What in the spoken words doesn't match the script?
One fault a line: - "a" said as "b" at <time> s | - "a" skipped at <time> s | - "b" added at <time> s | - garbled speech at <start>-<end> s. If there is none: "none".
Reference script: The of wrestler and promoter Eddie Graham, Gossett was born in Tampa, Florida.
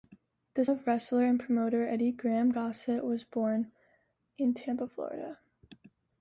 none